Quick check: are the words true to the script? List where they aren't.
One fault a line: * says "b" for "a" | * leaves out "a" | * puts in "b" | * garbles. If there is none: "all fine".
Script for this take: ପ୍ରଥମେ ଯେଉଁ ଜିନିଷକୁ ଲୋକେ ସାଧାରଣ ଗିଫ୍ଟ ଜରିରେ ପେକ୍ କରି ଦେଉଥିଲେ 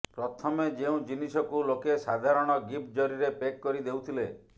all fine